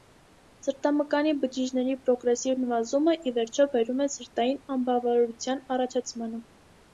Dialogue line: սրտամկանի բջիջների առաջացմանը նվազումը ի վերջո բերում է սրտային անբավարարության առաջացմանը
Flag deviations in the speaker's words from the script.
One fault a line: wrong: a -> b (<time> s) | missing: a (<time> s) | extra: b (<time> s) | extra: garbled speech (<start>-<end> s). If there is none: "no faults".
wrong: առաջացմանը -> պրոգրեսիվ (2.1 s)